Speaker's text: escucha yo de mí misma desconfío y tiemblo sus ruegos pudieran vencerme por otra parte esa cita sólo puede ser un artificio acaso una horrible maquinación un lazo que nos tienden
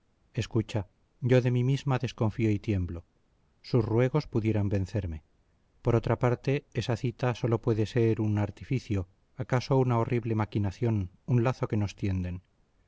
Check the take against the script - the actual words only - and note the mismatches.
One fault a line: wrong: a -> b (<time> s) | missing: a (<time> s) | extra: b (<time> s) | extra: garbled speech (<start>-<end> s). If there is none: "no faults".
no faults